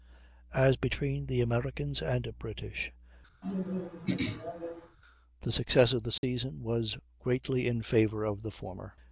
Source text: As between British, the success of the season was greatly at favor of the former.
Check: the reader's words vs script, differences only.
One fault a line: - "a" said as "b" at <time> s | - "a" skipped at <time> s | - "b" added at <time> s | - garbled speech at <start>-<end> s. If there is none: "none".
- "the Americans and" added at 1.3 s
- "at" said as "in" at 7.7 s